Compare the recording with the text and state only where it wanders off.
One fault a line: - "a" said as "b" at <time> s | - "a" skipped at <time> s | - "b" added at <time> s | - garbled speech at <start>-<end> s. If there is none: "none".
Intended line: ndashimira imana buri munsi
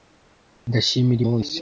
- "imana buri" skipped at 1.2 s